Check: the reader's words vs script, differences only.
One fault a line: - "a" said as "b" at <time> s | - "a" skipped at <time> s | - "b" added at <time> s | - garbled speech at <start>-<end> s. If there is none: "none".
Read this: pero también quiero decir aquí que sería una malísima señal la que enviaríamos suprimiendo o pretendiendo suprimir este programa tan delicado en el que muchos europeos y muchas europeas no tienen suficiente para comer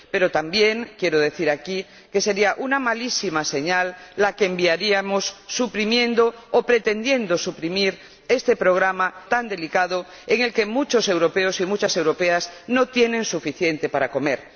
none